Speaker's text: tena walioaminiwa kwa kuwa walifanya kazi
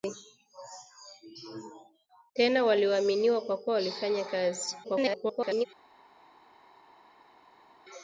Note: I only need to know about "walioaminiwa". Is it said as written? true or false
true